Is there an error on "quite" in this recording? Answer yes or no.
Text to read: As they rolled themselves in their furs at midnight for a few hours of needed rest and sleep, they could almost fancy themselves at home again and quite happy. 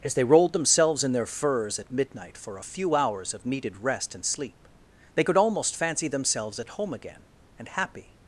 yes